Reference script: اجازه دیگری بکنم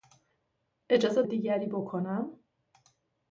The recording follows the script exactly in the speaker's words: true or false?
true